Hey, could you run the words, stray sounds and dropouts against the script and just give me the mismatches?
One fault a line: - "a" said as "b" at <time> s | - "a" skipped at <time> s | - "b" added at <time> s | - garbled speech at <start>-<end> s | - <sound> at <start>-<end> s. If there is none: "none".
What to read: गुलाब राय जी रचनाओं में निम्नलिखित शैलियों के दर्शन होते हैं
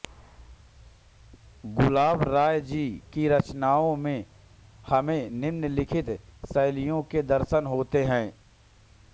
- "की" added at 3.1 s
- "हमें" added at 4.9 s